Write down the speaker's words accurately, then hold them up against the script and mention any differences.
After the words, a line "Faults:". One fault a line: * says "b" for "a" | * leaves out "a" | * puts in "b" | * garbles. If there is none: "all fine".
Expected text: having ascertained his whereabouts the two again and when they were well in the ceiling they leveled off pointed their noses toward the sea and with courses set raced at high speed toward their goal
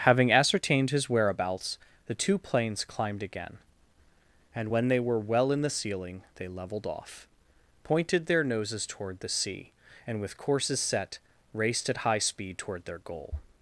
having ascertained his whereabouts the two planes climbed again and when they were well in the ceiling they leveled off pointed their noses toward the sea and with courses set raced at high speed toward their goal
Faults:
* puts in "planes climbed"